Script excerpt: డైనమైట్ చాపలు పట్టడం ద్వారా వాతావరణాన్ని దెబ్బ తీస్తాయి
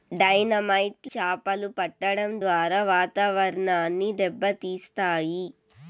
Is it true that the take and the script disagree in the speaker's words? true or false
false